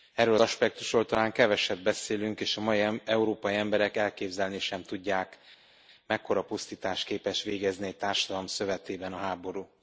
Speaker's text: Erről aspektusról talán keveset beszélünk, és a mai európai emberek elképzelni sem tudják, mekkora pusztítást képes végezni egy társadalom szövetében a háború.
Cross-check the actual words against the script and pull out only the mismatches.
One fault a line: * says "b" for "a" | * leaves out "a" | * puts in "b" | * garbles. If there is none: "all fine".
all fine